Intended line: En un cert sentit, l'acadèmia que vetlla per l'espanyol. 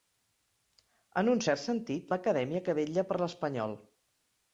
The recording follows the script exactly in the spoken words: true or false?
true